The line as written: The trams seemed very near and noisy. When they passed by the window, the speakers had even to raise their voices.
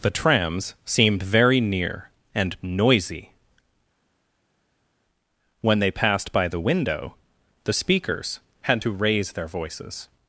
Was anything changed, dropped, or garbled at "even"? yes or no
yes